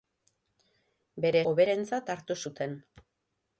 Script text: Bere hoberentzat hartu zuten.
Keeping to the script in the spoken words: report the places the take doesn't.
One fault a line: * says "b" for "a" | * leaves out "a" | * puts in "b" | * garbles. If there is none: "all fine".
all fine